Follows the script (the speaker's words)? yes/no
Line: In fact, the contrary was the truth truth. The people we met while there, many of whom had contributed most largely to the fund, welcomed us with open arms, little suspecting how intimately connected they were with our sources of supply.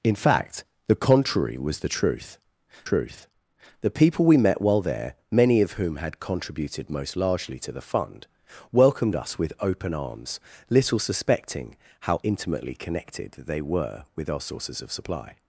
yes